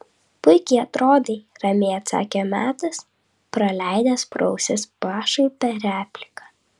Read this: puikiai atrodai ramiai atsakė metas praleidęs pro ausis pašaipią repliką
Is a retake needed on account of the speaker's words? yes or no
no